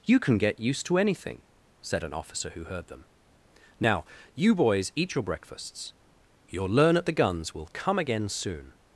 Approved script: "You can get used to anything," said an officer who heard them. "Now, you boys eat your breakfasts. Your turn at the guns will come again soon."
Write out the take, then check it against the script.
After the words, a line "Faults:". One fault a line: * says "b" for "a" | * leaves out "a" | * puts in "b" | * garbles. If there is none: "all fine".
"You can get used to anything," said an officer who heard them. "Now, you boys eat your breakfasts. Your learn at the guns will come again soon."
Faults:
* says "learn" for "turn"